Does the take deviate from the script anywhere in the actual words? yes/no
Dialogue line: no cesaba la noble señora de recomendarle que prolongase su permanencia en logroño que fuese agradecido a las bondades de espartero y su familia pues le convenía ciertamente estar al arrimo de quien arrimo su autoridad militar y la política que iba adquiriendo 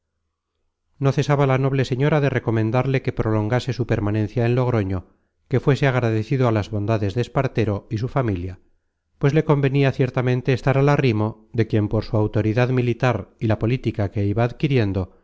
yes